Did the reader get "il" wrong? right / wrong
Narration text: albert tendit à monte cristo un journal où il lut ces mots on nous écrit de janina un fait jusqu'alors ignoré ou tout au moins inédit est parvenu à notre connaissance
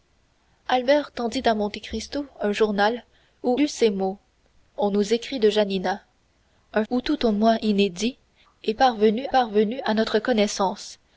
wrong